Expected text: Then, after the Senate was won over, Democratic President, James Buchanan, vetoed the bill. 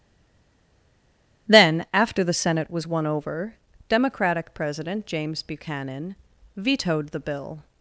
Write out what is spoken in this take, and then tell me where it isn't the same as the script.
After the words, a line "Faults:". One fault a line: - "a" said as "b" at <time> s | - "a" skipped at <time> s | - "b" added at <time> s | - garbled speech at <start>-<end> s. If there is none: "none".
Then, after the Senate was won over, Democratic President, James Buchanan, vetoed the bill.
Faults:
none